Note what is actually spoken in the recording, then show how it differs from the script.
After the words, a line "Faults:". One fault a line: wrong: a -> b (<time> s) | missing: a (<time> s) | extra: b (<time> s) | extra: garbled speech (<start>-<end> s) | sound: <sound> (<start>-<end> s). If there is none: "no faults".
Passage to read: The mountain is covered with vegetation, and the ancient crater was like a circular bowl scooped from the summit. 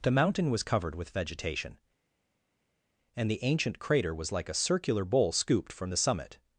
The mountain was covered with vegetation, and the ancient crater was like a circular bowl scooped from the summit.
Faults:
wrong: is -> was (0.5 s)